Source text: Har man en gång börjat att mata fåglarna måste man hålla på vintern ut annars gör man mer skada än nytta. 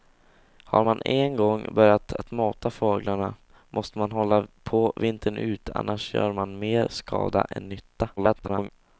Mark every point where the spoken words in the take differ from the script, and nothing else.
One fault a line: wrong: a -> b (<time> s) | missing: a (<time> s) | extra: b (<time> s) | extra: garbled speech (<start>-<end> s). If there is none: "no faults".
extra: garbled speech (8.2-8.7 s)